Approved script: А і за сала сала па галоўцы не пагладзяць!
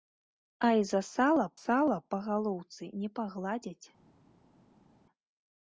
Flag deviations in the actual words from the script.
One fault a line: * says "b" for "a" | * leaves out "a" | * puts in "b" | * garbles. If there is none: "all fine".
all fine